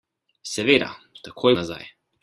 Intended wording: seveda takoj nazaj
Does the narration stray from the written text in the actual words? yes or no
no